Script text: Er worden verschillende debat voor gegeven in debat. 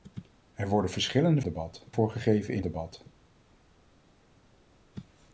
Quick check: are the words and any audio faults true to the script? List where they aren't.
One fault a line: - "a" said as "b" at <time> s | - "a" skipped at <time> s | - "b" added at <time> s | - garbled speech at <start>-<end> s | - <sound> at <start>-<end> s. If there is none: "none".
none